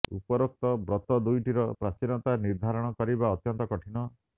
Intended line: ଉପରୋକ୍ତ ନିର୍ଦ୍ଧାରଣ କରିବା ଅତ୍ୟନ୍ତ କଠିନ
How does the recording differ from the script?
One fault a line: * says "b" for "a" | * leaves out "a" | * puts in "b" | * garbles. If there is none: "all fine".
* puts in "ବ୍ରତ ଦୁଇଟିର ପ୍ରାଚୀନତା"